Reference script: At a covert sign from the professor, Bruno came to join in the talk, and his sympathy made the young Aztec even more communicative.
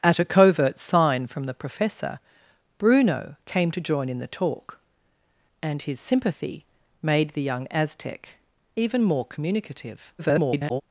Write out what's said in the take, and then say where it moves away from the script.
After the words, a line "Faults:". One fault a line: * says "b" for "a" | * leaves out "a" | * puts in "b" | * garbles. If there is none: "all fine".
At a covert sign from the professor, Bruno came to join in the talk, and his sympathy made the young Aztec even more communicative. [garbled]
Faults:
* garbles